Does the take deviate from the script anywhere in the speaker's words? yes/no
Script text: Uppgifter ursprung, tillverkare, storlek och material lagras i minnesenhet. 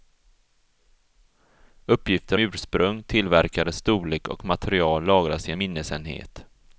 no